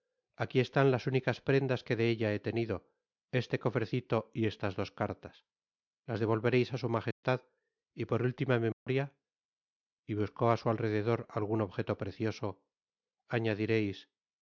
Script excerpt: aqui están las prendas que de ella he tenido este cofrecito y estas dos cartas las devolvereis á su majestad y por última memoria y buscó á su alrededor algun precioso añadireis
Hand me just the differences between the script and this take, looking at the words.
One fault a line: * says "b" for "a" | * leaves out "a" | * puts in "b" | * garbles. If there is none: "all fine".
* puts in "únicas"
* puts in "objeto"